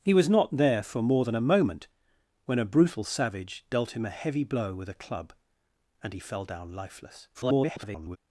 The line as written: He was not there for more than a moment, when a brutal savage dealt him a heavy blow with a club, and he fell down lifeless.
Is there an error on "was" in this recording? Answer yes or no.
no